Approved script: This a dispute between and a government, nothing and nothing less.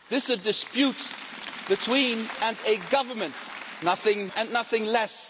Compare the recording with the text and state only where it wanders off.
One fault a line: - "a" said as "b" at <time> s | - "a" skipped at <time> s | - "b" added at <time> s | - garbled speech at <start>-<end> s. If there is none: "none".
none